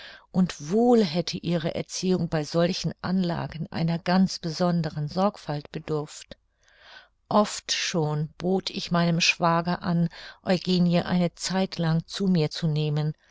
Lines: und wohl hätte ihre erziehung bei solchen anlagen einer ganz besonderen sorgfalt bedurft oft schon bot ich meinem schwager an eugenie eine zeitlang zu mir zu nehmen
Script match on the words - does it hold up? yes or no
yes